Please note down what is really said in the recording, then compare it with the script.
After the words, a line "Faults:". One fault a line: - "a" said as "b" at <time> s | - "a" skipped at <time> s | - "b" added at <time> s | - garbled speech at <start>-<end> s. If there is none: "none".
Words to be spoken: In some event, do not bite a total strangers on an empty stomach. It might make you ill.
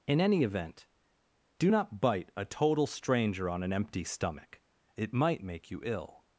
In any event, do not bite a total stranger on an empty stomach. It might make you ill.
Faults:
- "some" said as "any" at 0.2 s
- "strangers" said as "stranger" at 2.9 s